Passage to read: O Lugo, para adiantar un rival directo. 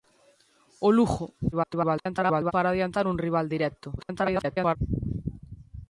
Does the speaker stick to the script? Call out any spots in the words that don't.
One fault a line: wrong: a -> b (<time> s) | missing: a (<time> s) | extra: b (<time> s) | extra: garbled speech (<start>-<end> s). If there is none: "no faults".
extra: garbled speech (1.5-2.5 s)
extra: garbled speech (4.0-4.8 s)